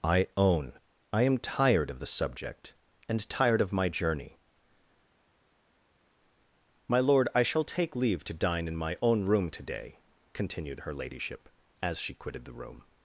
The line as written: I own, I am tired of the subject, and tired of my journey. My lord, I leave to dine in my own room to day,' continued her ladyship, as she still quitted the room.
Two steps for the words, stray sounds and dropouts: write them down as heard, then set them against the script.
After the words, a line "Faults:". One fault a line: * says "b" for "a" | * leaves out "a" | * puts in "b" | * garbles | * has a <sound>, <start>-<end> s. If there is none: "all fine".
I own, I am tired of the subject, and tired of my journey. My lord, I shall take leave to dine in my own room to day,' continued her ladyship, as she quitted the room.
Faults:
* puts in "shall take"
* leaves out "still"